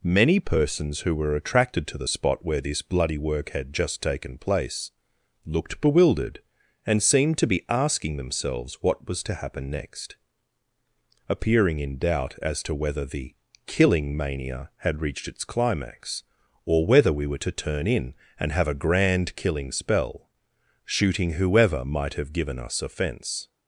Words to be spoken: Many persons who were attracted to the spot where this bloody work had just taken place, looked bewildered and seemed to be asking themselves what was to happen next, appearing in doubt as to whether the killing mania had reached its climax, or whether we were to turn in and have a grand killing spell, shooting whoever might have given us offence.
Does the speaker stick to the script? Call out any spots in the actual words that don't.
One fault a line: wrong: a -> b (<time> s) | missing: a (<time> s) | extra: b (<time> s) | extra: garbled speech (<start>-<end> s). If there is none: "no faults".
no faults